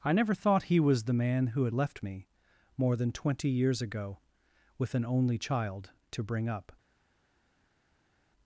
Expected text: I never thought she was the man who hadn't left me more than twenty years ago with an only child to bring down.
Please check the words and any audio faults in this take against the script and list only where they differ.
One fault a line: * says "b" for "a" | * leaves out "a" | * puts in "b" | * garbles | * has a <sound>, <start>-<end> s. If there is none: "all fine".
* says "he" for "she"
* says "had" for "hadn't"
* says "up" for "down"